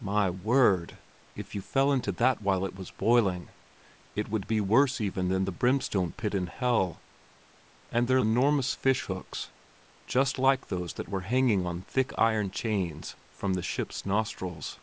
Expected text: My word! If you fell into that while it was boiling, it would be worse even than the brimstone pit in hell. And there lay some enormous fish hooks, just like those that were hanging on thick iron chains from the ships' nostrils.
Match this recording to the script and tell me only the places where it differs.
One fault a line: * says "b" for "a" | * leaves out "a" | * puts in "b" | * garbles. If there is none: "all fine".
* leaves out "lay some"